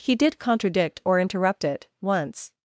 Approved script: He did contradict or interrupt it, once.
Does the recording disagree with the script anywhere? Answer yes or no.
no